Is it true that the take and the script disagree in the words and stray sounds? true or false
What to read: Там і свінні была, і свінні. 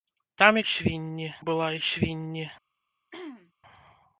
true